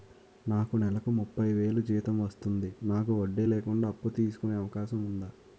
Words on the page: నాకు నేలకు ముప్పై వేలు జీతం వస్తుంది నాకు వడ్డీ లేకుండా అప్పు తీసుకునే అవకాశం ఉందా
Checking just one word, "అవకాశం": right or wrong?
right